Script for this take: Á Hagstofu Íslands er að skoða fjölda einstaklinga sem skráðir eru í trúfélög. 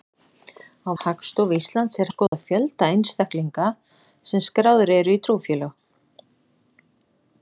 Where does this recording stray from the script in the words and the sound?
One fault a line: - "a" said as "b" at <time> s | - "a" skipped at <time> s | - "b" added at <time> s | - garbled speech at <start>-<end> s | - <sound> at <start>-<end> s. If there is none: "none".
- dropout at 2.3-2.3 s